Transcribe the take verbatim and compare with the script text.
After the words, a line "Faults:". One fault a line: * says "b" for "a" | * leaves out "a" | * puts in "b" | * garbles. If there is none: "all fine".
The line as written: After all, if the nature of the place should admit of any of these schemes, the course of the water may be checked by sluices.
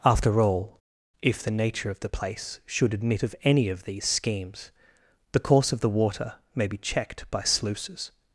After all, if the nature of the place should admit of any of these schemes, the course of the water may be checked by sluices.
Faults:
all fine